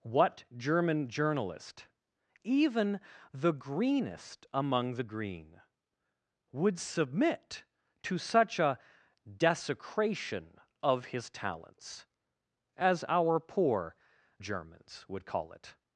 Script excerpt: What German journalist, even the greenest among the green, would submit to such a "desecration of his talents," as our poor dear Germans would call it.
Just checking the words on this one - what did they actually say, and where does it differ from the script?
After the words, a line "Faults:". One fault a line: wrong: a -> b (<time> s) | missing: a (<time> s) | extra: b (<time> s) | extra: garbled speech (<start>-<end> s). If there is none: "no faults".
What German journalist, even the greenest among the green, would submit to such a "desecration of his talents," as our poor Germans would call it.
Faults:
missing: dear (13.9 s)